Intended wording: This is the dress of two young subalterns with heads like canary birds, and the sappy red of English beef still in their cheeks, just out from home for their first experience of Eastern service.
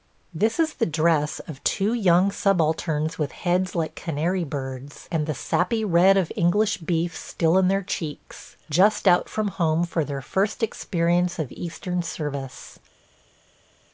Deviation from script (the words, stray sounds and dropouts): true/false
false